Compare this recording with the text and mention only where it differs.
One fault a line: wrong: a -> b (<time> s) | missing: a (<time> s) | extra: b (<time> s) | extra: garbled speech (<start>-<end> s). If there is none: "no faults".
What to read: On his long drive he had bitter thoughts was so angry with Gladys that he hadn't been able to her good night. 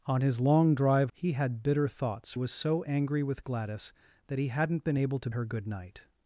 no faults